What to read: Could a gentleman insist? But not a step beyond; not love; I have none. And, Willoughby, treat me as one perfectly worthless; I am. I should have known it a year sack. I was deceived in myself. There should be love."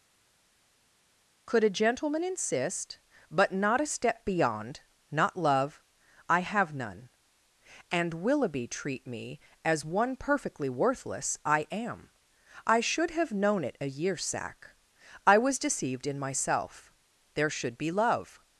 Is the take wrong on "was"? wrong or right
right